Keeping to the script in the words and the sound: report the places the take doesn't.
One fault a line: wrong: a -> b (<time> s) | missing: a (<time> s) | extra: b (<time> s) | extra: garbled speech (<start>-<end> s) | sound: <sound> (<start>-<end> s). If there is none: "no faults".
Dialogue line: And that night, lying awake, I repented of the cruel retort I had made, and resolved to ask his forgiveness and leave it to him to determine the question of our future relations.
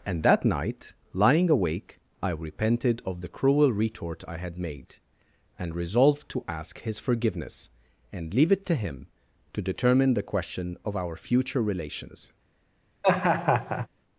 sound: laugh (13.0-13.9 s)